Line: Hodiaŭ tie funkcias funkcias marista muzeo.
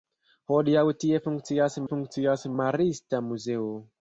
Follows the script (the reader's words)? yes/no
yes